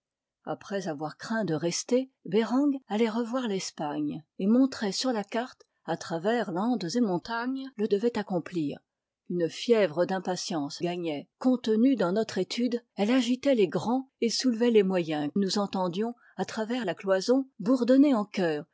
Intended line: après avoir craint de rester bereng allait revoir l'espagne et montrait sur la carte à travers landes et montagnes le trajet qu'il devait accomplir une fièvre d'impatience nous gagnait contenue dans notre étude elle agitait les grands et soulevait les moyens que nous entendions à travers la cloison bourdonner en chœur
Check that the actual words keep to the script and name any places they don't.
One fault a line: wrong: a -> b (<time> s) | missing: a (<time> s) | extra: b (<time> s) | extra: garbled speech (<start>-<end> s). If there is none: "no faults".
missing: trajet qu'il (7.9 s)
missing: nous (10.8 s)
missing: que (15.3 s)